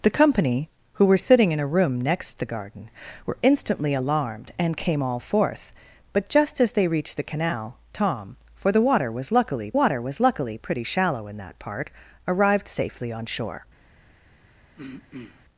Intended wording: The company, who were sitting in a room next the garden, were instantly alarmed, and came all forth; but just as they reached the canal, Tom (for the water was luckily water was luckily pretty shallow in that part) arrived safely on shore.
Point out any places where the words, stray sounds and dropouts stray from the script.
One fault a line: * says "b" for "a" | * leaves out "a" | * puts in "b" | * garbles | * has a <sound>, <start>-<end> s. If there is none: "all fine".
* has a throat clearing, 14.8-15.4 s